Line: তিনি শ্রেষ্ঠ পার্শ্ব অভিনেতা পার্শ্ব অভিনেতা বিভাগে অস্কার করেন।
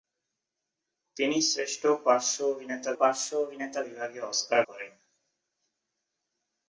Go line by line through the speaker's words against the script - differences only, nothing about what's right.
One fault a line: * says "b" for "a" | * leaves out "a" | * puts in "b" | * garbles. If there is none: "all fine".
all fine